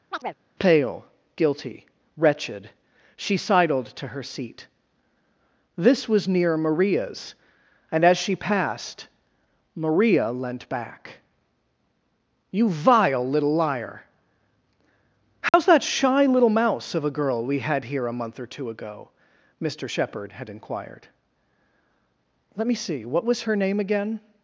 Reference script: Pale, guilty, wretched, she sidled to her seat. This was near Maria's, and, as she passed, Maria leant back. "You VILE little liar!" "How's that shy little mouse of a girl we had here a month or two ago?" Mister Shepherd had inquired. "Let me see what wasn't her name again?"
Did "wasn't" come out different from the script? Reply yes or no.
yes